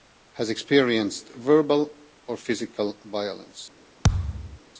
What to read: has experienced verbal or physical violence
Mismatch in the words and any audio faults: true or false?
true